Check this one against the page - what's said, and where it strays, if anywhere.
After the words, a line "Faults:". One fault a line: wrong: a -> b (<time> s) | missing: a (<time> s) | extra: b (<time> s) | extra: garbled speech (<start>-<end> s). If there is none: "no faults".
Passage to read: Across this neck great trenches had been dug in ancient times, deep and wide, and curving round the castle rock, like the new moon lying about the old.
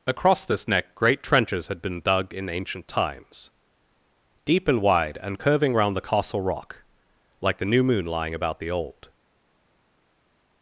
Across this neck great trenches had been dug in ancient times, deep and wide, and curving round the castle rock, like the new moon lying about the old.
Faults:
no faults